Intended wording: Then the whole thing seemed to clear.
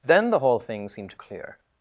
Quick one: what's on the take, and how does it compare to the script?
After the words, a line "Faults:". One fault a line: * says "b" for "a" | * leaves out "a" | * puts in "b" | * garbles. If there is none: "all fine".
Then the whole thing seemed to clear.
Faults:
all fine